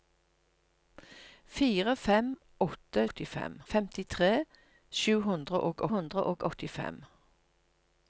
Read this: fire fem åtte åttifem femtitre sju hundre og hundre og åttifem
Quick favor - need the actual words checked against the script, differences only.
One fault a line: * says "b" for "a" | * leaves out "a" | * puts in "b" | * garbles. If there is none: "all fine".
all fine